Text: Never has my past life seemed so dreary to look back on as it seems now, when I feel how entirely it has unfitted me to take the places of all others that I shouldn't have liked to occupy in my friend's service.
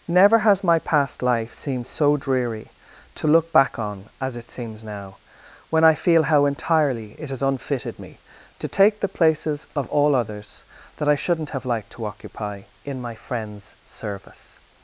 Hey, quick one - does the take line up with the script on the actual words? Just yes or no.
yes